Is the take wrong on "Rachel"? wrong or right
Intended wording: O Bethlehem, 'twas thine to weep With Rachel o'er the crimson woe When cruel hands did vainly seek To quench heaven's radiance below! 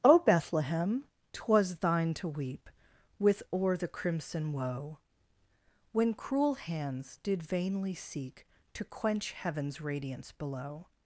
wrong